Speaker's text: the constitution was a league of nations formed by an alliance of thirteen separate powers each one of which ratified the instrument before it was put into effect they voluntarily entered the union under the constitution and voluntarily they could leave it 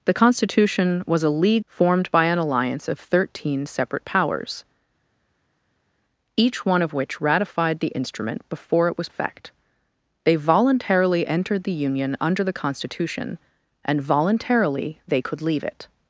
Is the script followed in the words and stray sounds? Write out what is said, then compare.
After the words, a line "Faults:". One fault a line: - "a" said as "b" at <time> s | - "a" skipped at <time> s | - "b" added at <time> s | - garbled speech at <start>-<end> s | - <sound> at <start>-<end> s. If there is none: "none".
the constitution was a league formed by an alliance of thirteen separate powers each one of which ratified the instrument before it was effect they voluntarily entered the union under the constitution and voluntarily they could leave it
Faults:
- "of nations" skipped at 1.6 s
- "put into" skipped at 9.1 s